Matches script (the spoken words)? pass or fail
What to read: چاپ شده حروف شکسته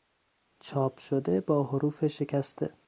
fail